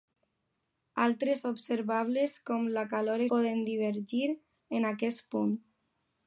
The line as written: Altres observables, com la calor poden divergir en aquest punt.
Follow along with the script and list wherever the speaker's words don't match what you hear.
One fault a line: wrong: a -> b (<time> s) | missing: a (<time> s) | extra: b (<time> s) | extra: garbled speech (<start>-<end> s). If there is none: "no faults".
no faults